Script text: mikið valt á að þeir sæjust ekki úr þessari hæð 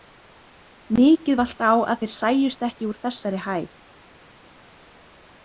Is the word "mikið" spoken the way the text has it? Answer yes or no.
yes